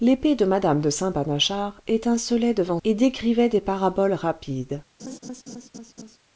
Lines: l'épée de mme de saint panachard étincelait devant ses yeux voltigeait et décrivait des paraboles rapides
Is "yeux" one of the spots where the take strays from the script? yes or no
yes